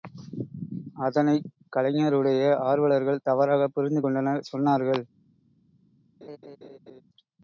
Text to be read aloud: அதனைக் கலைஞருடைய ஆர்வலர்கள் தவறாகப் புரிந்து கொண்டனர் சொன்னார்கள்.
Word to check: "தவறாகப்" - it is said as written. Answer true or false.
true